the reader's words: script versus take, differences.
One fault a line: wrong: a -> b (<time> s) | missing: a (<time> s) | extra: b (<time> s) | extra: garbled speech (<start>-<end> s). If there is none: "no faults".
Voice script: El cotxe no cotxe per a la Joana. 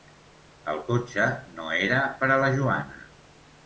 wrong: cotxe -> era (1.9 s)